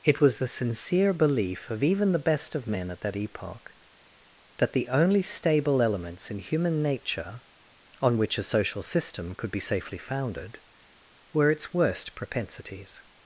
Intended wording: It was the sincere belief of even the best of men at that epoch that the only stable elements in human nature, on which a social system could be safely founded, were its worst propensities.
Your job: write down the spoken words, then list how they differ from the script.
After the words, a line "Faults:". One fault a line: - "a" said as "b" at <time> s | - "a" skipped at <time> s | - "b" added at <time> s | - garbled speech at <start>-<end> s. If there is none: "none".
It was the sincere belief of even the best of men at that epoch that the only stable elements in human nature, on which a social system could be safely founded, were its worst propensities.
Faults:
none